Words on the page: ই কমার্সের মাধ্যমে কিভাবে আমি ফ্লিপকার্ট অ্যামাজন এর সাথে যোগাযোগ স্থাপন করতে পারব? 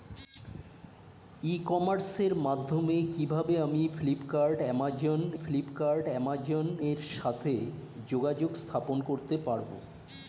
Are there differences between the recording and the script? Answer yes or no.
yes